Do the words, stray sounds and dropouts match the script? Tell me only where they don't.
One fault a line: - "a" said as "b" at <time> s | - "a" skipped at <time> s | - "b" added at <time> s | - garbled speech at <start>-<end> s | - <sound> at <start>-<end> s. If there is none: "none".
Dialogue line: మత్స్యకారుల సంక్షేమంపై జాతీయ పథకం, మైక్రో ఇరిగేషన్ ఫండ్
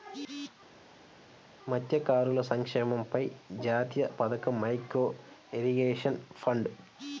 none